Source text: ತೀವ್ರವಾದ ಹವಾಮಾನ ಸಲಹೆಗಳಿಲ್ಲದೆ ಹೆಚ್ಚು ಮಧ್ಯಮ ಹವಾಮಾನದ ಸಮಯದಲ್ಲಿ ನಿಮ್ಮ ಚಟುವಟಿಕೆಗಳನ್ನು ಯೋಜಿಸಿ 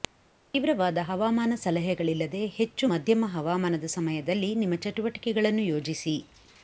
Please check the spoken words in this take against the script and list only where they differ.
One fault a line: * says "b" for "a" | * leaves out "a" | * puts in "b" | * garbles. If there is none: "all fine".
all fine